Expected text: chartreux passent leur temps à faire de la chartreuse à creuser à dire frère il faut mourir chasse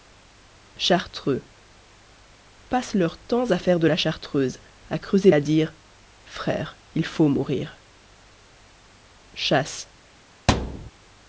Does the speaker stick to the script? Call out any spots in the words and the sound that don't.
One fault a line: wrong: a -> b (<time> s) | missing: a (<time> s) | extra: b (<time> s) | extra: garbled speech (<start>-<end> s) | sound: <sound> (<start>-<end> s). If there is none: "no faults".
sound: thud (10.5-10.9 s)